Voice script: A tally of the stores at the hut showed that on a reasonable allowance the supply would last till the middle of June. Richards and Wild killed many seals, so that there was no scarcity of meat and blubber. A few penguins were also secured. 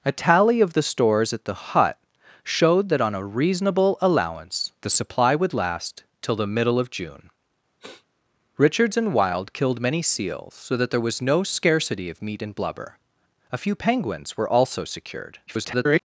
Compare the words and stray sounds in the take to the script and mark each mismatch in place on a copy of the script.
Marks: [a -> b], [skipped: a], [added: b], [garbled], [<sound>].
A tally of the stores at the hut showed that on a reasonable allowance the supply would last till the middle of June. [sniff] Richards and Wild killed many seals, so that there was no scarcity of meat and blubber. A few penguins were also secured. [garbled]